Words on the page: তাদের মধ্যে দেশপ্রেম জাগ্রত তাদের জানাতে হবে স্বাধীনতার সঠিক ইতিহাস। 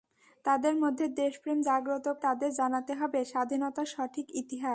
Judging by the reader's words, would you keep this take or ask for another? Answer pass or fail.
pass